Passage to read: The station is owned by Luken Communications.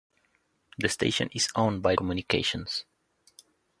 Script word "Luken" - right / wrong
wrong